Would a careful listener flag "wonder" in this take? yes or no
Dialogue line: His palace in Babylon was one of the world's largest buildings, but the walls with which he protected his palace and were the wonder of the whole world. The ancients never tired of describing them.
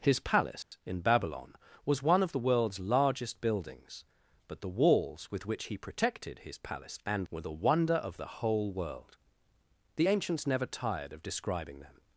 no